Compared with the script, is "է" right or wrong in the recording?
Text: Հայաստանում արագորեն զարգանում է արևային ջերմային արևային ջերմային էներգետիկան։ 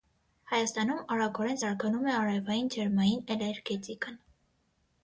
right